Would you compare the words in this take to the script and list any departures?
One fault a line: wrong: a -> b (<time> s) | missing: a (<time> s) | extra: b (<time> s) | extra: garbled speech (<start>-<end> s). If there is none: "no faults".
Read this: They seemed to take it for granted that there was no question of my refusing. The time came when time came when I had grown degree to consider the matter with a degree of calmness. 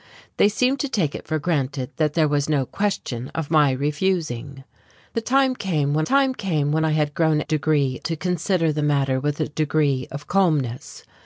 no faults